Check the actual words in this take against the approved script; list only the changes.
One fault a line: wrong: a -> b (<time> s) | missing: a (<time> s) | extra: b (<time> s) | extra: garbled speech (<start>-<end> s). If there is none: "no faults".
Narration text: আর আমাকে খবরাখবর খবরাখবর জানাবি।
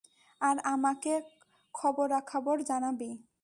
missing: খবরাখবর (2.6 s)